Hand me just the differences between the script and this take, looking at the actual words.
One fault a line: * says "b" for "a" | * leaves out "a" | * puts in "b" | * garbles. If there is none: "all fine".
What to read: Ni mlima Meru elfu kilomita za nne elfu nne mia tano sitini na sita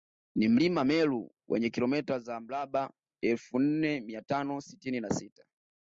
* says "wenye" for "elfu"
* says "mraba" for "nne"